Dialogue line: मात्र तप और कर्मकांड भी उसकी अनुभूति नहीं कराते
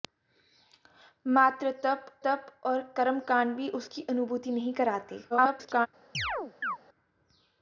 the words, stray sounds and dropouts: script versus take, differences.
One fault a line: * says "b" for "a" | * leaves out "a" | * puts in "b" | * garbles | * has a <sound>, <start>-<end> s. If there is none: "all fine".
* puts in "तप"
* garbles
* has a chirp, 6.1-6.8 s